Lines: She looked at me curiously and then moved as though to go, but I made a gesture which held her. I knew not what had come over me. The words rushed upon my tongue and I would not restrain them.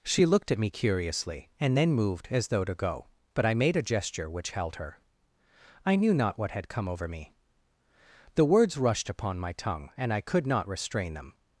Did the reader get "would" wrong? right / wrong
wrong